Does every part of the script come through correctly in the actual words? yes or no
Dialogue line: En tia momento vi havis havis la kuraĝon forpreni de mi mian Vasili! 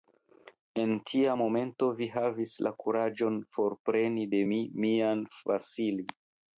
no